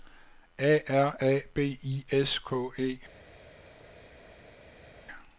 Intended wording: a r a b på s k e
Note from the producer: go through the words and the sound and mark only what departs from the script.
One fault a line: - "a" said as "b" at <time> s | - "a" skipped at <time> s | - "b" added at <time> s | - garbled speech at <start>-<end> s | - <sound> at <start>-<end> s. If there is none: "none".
- "på" said as "i" at 1.8 s